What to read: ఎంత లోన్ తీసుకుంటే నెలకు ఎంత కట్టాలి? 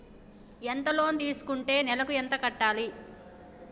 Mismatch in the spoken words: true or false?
false